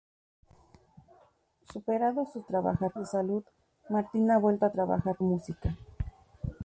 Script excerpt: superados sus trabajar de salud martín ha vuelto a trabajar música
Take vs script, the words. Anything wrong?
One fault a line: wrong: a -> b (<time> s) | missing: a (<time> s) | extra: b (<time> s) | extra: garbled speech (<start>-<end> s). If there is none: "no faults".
no faults